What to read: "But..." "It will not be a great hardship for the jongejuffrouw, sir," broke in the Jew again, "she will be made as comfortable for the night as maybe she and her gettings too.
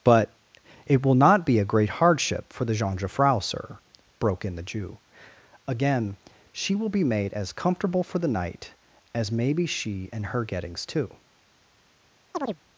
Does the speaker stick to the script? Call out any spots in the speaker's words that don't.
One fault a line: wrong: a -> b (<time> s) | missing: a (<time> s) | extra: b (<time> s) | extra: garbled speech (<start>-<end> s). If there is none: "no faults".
no faults